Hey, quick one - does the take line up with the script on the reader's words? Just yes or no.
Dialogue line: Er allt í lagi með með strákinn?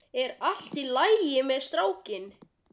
no